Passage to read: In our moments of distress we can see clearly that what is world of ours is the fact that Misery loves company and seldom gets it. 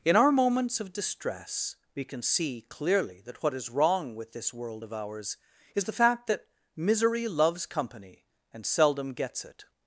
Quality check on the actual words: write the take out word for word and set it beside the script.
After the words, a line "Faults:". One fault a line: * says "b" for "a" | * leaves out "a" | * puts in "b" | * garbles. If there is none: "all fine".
In our moments of distress we can see clearly that what is wrong with this world of ours is the fact that Misery loves company and seldom gets it.
Faults:
* puts in "wrong with this"